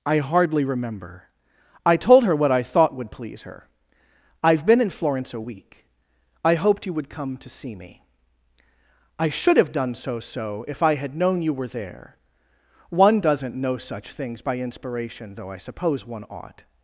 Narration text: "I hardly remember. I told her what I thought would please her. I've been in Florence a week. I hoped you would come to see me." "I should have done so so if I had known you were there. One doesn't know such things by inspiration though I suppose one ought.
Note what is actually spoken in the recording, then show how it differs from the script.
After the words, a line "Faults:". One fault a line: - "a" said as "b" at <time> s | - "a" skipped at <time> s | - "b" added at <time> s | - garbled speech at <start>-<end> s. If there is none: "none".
"I hardly remember. I told her what I thought would please her. I've been in Florence a week. I hoped you would come to see me." "I should have done so so if I had known you were there. One doesn't know such things by inspiration though I suppose one ought.
Faults:
none